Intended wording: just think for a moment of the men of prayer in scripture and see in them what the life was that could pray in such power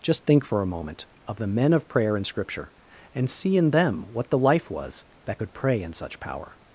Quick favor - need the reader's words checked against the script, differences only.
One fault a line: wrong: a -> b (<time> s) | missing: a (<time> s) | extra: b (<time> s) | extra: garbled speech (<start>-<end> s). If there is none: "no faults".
no faults